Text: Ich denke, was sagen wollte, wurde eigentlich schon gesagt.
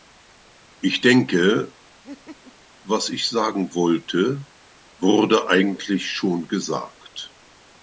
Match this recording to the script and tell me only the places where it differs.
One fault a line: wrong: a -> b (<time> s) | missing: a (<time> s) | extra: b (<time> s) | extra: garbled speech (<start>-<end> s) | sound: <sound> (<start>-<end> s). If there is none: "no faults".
sound: laugh (2.0-2.6 s)
extra: ich (3.1 s)